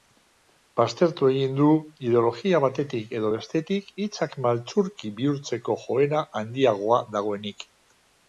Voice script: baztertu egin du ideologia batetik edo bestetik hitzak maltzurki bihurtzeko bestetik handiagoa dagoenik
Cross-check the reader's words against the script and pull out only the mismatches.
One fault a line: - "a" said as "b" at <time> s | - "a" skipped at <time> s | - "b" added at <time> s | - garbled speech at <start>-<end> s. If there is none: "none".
- "bestetik" said as "joera" at 5.9 s